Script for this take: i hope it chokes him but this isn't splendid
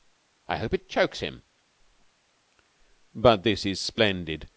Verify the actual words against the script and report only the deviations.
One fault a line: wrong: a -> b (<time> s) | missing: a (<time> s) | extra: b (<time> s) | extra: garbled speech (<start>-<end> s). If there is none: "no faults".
wrong: isn't -> is (3.7 s)